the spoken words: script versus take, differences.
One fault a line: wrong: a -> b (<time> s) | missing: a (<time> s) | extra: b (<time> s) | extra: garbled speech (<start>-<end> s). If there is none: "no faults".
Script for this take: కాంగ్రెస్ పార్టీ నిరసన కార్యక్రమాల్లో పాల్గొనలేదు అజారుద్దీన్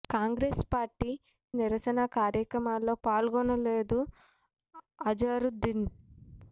no faults